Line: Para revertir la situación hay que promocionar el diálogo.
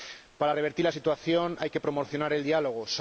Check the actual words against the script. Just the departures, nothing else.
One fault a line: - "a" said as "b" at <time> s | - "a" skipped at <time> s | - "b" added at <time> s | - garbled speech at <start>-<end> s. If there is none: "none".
none